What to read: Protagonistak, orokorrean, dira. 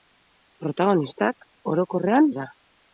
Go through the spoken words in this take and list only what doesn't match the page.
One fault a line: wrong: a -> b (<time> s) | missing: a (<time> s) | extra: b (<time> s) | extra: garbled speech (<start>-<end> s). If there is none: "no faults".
no faults